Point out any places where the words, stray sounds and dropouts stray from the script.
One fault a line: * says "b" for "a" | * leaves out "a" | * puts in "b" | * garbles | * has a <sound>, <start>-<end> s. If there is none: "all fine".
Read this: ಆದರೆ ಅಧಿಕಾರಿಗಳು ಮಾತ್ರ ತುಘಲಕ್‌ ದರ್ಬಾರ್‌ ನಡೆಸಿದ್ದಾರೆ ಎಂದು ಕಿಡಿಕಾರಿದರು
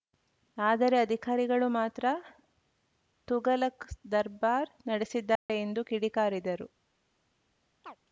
* has a dropout, 5.4-5.5 s
* has a chirp, 7.8-8.0 s